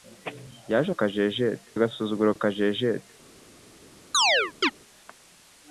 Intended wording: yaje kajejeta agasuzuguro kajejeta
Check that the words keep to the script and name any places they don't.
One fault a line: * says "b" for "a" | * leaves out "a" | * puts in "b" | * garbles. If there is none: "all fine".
all fine